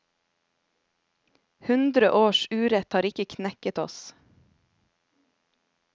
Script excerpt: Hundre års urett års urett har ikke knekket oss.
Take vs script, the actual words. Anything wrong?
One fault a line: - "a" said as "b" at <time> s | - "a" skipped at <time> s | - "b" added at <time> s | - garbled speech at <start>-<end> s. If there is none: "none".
- "års urett" skipped at 2.9 s